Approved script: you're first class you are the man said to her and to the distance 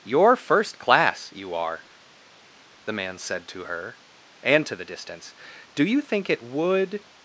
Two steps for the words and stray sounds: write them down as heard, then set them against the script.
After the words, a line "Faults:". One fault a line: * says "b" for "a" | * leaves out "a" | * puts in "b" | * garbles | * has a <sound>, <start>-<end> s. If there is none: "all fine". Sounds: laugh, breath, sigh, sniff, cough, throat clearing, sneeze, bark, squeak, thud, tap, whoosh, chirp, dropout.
you're first class you are the man said to her and to the distance do you think it would
Faults:
* puts in "do you think it would"